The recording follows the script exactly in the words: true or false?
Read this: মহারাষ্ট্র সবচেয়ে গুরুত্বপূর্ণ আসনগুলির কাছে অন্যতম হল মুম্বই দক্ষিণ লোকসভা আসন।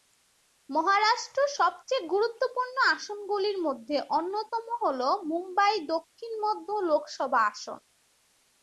false